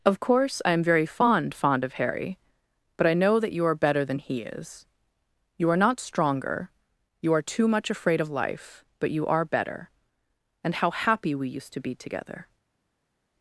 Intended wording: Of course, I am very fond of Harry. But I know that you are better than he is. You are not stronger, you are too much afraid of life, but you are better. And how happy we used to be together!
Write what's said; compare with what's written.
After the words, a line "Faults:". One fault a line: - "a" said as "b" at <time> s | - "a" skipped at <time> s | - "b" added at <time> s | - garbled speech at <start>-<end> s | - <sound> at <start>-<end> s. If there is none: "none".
Of course, I am very fond fond of Harry. But I know that you are better than he is. You are not stronger, you are too much afraid of life, but you are better. And how happy we used to be together!
Faults:
- "fond" added at 1.5 s